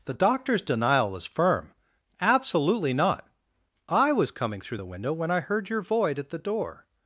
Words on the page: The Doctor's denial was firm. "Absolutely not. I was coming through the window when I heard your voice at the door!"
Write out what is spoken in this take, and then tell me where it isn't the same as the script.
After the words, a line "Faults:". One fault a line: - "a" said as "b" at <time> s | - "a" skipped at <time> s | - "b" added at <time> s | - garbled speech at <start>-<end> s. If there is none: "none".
The Doctor's denial was firm. "Absolutely not. I was coming through the window when I heard your void at the door!"
Faults:
- "voice" said as "void" at 5.8 s